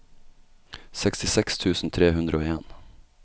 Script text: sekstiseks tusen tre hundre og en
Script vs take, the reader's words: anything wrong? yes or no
no